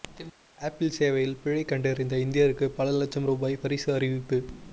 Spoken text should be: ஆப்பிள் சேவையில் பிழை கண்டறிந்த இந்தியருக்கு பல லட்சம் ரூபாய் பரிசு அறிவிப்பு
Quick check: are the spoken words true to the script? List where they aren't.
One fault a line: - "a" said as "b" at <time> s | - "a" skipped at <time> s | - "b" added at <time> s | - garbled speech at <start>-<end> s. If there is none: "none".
none